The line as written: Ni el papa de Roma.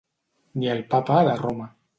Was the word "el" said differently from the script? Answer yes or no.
no